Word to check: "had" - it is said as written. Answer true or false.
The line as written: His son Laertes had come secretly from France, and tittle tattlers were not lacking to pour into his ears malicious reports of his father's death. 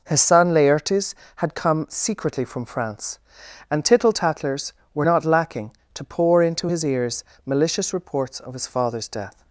true